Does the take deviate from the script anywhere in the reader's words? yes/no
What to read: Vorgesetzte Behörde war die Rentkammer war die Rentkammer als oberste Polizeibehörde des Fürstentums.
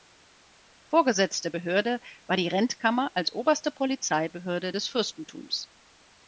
yes